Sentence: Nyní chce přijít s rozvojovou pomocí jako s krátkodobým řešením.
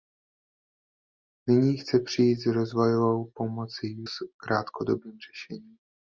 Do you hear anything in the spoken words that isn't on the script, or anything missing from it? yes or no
yes